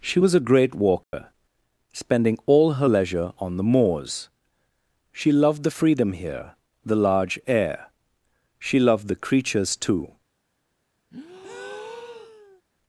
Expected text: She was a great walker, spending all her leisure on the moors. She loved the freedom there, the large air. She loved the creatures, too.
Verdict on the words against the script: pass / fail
fail